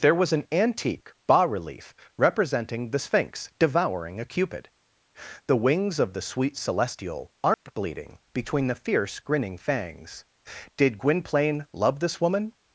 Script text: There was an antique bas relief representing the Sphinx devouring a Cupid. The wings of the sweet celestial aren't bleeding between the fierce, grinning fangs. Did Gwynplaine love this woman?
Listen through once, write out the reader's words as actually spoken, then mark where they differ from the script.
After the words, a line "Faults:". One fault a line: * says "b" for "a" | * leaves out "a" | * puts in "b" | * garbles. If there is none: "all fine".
There was an antique bas relief representing the Sphinx devouring a Cupid. The wings of the sweet celestial aren't bleeding between the fierce, grinning fangs. Did Gwynplaine love this woman?
Faults:
all fine